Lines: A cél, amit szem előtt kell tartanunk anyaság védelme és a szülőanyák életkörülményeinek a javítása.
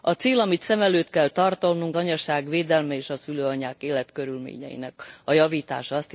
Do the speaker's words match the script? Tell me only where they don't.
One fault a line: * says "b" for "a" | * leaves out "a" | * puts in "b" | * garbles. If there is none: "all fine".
all fine